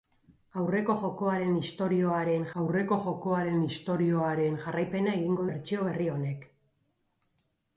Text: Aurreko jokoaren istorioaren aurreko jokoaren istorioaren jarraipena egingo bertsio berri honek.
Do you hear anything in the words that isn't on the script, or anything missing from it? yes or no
no